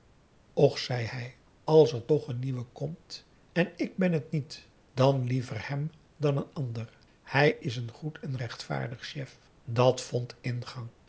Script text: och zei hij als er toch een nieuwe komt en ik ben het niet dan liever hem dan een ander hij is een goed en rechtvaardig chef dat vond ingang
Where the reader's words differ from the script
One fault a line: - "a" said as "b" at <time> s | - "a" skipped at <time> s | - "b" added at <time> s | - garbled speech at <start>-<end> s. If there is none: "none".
none